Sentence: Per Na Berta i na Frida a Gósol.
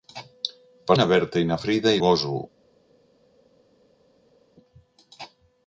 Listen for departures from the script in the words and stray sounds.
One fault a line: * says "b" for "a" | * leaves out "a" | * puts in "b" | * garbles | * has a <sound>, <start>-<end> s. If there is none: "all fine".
all fine